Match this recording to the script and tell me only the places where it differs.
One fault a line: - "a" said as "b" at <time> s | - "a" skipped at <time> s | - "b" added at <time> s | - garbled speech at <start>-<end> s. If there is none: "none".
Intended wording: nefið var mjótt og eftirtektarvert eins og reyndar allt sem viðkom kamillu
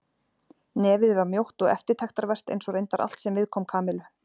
none